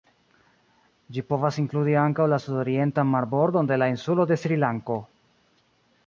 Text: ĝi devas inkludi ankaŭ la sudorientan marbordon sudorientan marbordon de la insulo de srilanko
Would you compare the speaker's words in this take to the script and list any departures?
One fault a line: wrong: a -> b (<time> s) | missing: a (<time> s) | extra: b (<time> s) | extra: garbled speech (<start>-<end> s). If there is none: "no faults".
wrong: devas -> povas (1.3 s)
missing: sudorientan marbordon (3.7 s)